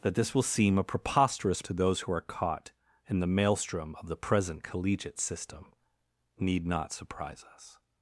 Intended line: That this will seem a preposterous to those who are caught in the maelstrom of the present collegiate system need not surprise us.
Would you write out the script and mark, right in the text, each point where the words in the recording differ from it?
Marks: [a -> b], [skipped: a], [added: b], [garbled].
That this will seem a preposterous to those who are caught in the maelstrom of the present collegiate system need not surprise us.